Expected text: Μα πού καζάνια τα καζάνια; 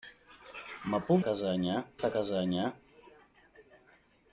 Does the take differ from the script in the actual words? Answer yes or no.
no